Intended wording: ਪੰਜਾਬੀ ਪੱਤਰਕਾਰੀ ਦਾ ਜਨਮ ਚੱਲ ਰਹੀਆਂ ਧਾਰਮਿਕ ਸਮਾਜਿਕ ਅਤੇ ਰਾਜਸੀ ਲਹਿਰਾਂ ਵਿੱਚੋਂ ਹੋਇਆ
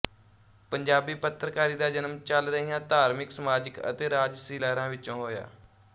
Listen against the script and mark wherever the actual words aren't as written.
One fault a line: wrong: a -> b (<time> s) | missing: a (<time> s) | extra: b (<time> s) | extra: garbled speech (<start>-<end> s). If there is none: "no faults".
no faults